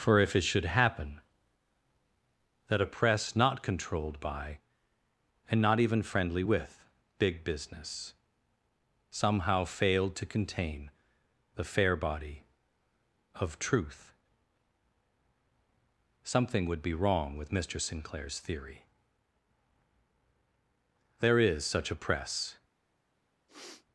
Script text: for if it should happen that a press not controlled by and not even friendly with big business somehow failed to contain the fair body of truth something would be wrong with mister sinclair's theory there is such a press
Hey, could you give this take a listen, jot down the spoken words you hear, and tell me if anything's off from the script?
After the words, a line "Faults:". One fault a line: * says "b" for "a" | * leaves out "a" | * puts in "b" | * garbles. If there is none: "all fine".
for if it should happen that a press not controlled by and not even friendly with big business somehow failed to contain the fair body of truth something would be wrong with mister sinclair's theory there is such a press
Faults:
all fine